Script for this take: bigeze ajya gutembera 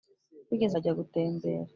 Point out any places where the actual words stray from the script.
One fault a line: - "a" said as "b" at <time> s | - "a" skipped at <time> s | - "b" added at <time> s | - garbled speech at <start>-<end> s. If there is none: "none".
none